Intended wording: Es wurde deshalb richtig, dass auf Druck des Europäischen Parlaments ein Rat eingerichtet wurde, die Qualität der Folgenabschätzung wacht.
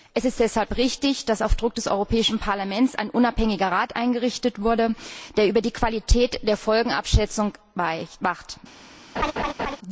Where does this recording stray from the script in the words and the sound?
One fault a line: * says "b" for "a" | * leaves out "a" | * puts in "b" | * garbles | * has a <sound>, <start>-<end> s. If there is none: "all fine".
* says "ist" for "wurde"
* puts in "unabhängiger"
* puts in "der über"
* has a laugh, 9.2-9.8 s